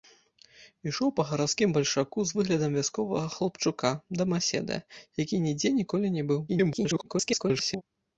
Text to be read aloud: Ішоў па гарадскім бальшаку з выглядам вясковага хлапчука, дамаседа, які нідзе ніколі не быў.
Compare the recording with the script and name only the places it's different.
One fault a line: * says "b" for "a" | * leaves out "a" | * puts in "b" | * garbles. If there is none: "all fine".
* garbles